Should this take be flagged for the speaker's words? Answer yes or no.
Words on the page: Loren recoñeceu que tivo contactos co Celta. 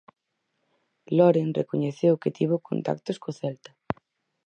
no